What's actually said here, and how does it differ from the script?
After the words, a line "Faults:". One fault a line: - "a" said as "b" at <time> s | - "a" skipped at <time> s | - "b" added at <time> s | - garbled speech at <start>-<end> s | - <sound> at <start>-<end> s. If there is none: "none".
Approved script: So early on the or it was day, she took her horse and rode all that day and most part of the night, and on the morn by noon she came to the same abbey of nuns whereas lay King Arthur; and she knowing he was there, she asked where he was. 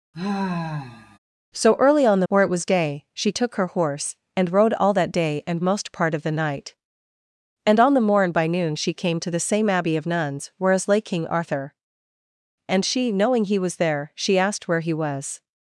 So early on the or it was day, she took her horse and rode all that day and most part of the night, and on the morn by noon she came to the same abbey of nuns whereas lay King Arthur; and she knowing he was there, she asked where he was.
Faults:
- sigh at 0.1-1.2 s